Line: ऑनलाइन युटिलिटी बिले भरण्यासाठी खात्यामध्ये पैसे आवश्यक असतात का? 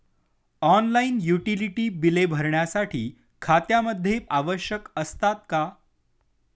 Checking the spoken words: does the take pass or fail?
fail